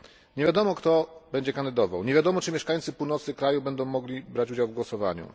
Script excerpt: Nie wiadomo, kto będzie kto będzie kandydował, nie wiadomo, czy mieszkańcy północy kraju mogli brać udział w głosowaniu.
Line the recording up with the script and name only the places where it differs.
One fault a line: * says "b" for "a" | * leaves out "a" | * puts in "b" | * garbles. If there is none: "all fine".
* leaves out "kto będzie"
* puts in "będą"